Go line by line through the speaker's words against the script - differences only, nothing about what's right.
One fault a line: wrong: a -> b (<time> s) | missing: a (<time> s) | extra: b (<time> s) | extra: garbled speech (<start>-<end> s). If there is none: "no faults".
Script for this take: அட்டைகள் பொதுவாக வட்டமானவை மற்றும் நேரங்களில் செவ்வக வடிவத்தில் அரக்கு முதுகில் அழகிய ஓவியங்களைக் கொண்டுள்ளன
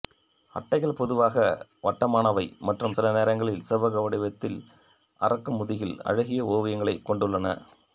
extra: சில (2.9 s)